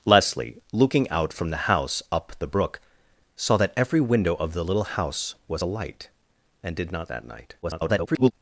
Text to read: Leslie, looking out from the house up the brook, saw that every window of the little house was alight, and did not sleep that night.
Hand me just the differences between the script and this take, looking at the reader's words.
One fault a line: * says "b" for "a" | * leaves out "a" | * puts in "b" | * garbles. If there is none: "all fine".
* leaves out "sleep"
* garbles